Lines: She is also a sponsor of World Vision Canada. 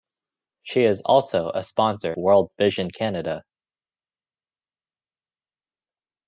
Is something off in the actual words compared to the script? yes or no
yes